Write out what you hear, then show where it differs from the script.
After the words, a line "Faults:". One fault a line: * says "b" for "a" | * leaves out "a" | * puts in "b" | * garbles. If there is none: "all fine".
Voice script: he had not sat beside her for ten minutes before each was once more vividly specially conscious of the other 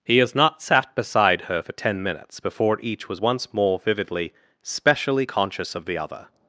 he has not sat beside her for ten minutes before each was once more vividly specially conscious of the other
Faults:
* says "has" for "had"